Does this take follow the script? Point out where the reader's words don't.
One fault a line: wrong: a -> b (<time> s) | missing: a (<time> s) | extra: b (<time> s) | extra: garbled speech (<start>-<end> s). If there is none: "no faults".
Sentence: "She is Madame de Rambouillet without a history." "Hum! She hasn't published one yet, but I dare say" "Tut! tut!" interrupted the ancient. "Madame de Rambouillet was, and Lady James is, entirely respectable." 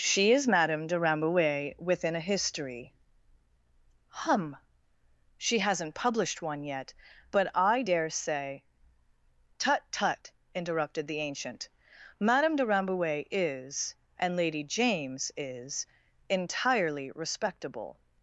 wrong: without -> within (1.8 s)
wrong: was -> is (13.3 s)